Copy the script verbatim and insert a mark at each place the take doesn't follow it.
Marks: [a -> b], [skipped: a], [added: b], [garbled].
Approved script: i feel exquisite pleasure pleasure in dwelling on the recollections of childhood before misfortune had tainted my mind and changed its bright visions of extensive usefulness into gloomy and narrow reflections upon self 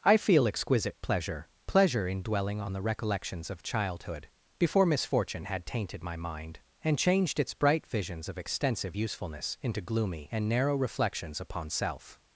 i feel exquisite pleasure pleasure in dwelling on the recollections of childhood before misfortune had tainted my mind and changed its bright visions of extensive usefulness into gloomy and narrow reflections upon self